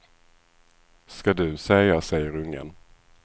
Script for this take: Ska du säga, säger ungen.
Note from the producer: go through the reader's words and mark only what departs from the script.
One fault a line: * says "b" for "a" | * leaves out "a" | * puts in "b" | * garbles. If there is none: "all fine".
all fine